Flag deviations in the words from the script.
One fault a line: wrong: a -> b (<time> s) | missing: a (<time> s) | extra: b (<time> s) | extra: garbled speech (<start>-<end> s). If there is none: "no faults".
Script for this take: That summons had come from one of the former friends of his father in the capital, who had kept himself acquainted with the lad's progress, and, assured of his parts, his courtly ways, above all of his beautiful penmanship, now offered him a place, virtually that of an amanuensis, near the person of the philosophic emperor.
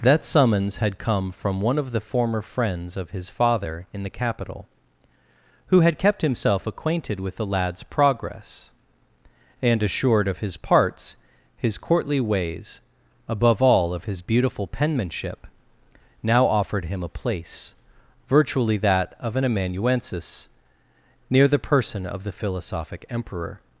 no faults